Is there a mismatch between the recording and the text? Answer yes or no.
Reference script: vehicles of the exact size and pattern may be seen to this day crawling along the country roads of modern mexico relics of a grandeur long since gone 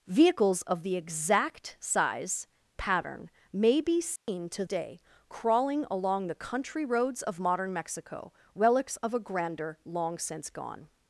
yes